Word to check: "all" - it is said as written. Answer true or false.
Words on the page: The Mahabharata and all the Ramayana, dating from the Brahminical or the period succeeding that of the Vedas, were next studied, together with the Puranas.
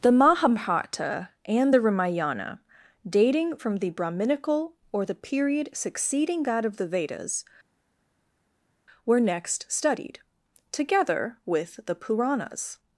false